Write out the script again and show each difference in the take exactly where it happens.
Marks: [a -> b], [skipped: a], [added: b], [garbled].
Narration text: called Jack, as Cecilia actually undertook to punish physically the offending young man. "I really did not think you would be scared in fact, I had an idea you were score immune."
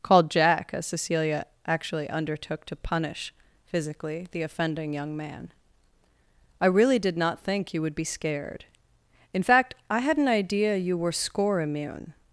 called Jack, as Cecilia actually undertook to punish physically the offending young man. "I really did not think you would be scared in fact, I had an idea you were score immune."